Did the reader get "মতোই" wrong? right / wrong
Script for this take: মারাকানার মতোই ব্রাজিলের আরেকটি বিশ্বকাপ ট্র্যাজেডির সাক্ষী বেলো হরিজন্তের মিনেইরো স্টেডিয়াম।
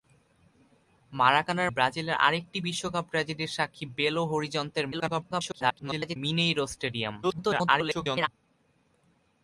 wrong